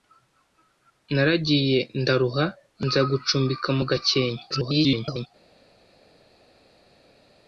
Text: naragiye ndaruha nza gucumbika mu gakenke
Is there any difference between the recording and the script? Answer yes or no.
yes